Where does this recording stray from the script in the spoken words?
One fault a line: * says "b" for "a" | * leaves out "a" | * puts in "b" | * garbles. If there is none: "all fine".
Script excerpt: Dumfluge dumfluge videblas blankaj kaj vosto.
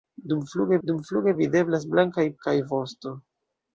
all fine